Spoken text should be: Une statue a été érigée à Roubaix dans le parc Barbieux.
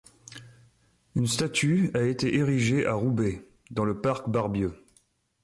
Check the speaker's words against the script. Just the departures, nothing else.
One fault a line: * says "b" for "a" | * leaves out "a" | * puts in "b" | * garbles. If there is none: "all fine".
all fine